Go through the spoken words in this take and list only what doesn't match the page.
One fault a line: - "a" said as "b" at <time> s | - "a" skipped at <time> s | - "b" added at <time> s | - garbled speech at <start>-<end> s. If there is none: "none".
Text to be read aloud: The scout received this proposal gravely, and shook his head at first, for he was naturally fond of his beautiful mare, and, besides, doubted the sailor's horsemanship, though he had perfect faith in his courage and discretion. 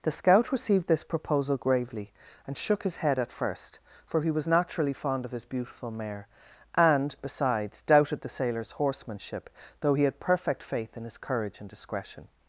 none